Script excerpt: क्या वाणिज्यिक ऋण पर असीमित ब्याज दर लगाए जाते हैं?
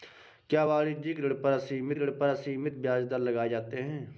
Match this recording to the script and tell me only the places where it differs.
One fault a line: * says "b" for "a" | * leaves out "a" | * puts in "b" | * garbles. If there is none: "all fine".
* puts in "ऋण पर असीमित"